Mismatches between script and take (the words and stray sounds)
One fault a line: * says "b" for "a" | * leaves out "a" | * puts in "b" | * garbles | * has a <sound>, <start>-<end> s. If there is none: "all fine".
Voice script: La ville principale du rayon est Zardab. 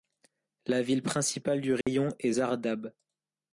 * has a dropout, 1.8-1.9 s